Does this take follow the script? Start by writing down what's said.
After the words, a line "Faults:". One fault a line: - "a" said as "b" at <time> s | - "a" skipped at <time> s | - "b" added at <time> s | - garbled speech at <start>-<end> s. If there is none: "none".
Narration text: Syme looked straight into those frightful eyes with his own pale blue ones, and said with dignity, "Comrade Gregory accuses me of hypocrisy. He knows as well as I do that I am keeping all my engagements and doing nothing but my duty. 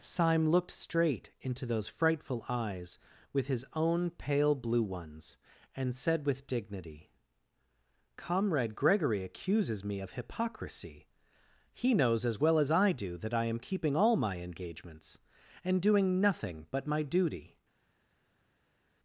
Syme looked straight into those frightful eyes with his own pale blue ones, and said with dignity, "Comrade Gregory accuses me of hypocrisy. He knows as well as I do that I am keeping all my engagements and doing nothing but my duty.
Faults:
none